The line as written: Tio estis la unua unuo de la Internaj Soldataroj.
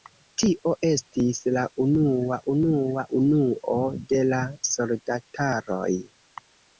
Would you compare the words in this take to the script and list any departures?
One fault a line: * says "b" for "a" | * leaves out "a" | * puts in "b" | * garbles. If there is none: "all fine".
* puts in "unua"
* leaves out "Internaj"